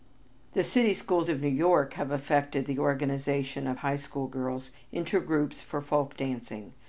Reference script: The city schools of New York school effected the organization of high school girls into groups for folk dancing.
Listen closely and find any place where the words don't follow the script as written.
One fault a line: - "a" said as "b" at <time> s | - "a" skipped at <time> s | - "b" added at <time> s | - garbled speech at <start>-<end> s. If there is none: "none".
- "school" said as "have" at 1.9 s